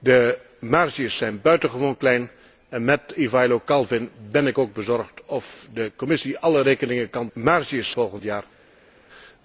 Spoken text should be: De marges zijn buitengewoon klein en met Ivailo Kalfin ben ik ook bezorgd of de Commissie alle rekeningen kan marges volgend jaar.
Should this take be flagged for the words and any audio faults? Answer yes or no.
no